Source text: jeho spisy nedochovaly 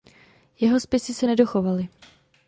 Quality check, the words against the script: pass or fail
fail